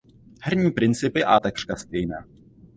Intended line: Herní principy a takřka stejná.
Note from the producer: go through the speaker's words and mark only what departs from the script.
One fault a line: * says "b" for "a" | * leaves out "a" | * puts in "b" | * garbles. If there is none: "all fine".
all fine